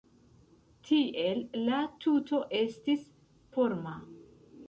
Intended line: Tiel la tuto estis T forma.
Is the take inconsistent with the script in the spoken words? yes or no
yes